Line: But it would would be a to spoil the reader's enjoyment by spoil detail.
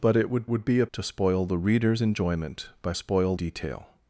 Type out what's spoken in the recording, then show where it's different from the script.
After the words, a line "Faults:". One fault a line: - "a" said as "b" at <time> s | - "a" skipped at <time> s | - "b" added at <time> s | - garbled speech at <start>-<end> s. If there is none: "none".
But it would would be a to spoil the reader's enjoyment by spoil detail.
Faults:
none